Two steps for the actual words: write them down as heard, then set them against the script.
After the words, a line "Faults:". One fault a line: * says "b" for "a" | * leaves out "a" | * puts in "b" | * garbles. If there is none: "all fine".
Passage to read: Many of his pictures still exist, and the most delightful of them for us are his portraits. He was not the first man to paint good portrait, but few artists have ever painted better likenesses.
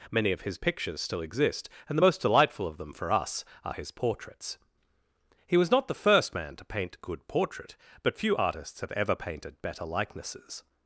Many of his pictures still exist, and the most delightful of them for us are his portraits. He was not the first man to paint good portrait, but few artists have ever painted better likenesses.
Faults:
all fine